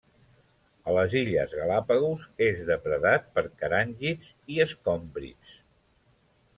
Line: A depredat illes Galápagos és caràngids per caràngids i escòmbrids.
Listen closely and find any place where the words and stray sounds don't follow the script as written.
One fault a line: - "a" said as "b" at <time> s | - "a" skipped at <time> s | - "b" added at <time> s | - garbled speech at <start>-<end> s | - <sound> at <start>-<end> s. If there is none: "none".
- "depredat" said as "les" at 0.9 s
- "caràngids" said as "depredat" at 2.7 s